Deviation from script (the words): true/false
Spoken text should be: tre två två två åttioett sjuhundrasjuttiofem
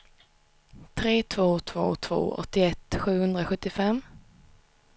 false